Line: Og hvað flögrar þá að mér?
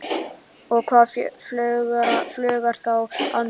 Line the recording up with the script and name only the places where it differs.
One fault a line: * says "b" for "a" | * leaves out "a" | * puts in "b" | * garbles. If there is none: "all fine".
all fine